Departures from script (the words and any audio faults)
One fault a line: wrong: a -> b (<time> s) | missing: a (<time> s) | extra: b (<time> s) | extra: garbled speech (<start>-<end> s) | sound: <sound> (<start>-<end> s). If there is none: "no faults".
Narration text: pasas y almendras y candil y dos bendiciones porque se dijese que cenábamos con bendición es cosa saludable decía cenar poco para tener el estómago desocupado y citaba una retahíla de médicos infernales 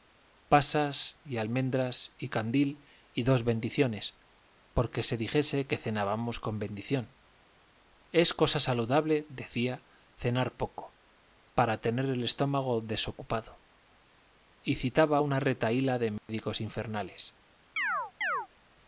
sound: dropout (16.2-16.3 s)
sound: chirp (17.8-18.5 s)